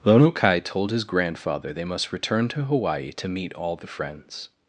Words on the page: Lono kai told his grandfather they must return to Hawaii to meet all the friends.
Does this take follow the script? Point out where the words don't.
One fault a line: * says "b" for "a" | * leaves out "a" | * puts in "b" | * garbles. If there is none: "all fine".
all fine